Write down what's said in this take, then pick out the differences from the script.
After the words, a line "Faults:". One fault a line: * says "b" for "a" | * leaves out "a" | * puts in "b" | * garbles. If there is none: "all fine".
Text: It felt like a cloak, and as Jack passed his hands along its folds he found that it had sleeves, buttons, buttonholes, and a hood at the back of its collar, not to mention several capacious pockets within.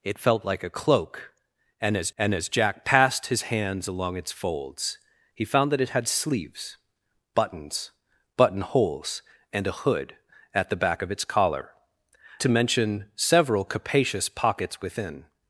It felt like a cloak, and as and as Jack passed his hands along its folds he found that it had sleeves, buttons, buttonholes, and a hood at the back of its collar, to mention several capacious pockets within.
Faults:
* puts in "and as"
* leaves out "not"